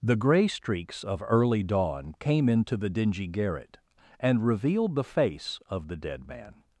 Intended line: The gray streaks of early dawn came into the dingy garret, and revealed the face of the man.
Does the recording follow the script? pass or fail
fail